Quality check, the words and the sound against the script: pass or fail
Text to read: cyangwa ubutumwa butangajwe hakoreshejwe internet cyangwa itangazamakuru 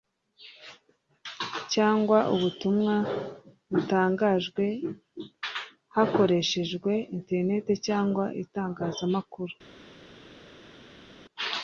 pass